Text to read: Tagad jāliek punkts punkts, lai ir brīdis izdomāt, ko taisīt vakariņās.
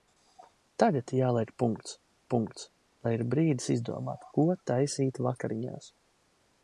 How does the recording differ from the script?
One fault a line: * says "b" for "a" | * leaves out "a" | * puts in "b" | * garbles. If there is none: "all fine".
all fine